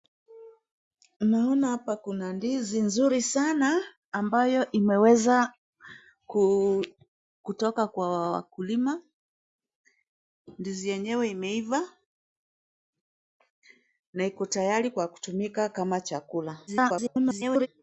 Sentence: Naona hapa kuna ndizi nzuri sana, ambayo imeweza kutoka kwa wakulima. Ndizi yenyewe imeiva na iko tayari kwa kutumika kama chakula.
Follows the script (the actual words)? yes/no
no